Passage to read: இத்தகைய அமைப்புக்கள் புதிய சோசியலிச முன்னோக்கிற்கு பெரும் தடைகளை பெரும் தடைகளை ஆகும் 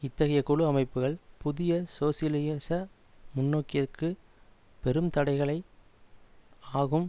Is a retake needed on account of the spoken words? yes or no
yes